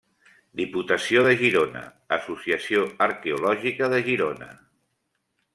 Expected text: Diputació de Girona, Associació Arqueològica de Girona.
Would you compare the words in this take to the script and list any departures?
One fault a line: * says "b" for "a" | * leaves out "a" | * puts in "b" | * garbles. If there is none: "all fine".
all fine